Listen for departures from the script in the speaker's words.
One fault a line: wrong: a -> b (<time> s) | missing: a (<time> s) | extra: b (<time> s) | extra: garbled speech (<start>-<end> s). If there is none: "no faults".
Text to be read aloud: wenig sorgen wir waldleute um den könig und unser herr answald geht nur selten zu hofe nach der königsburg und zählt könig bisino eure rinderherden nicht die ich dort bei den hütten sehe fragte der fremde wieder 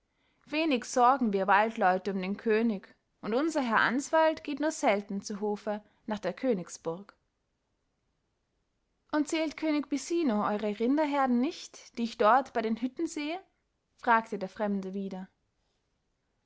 no faults